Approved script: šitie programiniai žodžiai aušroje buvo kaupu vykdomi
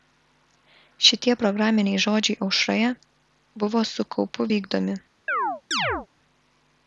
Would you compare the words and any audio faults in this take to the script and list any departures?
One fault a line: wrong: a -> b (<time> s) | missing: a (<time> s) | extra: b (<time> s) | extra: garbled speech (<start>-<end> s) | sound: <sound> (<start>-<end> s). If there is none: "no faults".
extra: su (3.9 s)
sound: chirp (5.3-6.1 s)